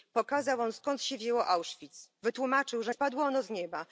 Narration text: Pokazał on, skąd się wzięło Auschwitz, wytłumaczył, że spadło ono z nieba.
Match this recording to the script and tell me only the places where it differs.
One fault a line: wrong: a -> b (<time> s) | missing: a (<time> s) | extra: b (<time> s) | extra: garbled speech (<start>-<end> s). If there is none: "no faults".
no faults